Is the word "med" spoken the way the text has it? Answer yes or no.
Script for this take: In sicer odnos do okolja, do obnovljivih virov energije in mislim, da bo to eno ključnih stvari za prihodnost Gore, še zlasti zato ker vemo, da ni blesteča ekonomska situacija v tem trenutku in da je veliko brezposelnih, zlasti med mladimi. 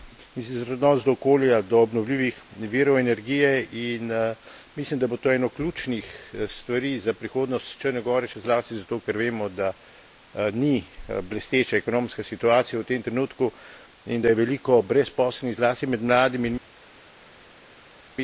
yes